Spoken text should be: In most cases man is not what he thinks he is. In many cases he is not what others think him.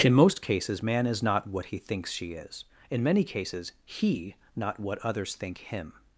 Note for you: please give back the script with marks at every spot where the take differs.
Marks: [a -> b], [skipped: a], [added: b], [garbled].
In most cases man is not what he thinks [he -> she] is. In many cases he [skipped: is] not what others think him.